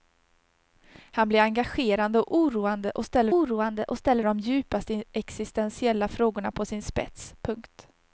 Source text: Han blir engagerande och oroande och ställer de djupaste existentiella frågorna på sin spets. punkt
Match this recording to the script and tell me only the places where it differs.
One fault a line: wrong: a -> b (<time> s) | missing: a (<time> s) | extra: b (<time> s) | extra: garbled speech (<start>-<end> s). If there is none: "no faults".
extra: oroande och ställer (3.3 s)